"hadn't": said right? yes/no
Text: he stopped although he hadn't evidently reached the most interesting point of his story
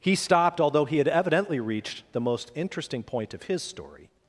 no